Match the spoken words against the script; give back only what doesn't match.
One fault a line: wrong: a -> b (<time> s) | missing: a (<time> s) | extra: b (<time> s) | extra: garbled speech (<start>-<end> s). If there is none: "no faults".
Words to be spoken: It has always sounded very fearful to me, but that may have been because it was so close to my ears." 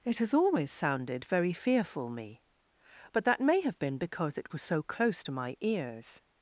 missing: to (2.1 s)